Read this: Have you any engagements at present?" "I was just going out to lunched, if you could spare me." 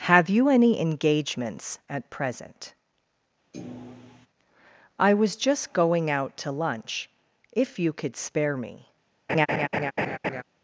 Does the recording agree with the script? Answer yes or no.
no